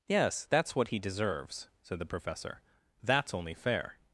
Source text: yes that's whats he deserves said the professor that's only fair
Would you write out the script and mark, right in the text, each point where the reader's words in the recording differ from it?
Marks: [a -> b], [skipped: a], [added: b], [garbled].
yes that's [whats -> what] he deserves said the professor that's only fair